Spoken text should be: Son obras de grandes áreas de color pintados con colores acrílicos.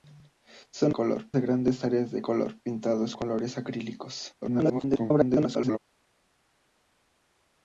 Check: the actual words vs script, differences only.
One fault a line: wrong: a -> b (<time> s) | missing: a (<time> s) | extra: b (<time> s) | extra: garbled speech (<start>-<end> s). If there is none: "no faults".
wrong: obras -> color (0.9 s)
missing: con (3.1 s)
extra: garbled speech (4.4-5.8 s)